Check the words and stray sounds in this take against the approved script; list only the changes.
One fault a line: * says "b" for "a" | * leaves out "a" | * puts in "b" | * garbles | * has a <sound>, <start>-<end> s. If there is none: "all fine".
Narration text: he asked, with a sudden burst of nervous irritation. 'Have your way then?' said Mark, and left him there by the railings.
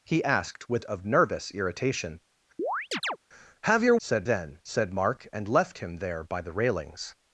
* leaves out "a sudden burst"
* has a chirp, 2.6-3.2 s
* says "said" for "way"